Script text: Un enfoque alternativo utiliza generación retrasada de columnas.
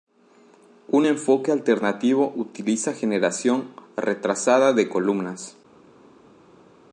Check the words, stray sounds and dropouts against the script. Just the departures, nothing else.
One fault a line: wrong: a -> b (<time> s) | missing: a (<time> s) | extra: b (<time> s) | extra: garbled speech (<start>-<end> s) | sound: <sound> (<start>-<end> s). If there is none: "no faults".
no faults